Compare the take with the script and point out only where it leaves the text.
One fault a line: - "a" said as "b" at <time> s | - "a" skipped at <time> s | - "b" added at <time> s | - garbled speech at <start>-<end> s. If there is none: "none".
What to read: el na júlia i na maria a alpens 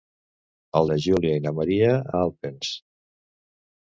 none